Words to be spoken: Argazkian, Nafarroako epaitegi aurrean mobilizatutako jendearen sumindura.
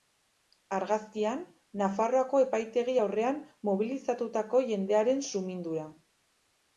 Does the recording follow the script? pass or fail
pass